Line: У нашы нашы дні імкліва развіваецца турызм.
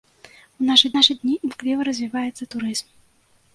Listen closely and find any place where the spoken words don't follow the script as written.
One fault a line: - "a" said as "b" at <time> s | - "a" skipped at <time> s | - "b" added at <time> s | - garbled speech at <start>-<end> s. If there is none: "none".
none